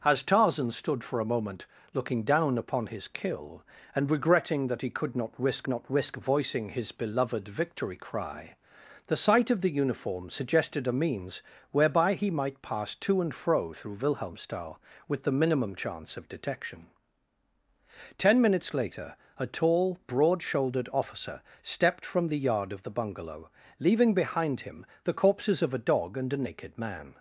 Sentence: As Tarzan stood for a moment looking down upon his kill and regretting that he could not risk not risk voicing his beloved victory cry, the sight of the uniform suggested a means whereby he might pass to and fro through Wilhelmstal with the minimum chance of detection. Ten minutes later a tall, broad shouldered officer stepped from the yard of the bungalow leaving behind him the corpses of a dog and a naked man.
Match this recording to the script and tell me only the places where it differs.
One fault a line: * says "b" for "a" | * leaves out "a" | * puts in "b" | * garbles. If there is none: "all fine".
all fine